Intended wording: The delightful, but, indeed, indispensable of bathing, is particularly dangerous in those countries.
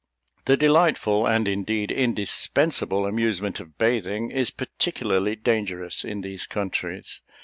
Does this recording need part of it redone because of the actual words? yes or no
yes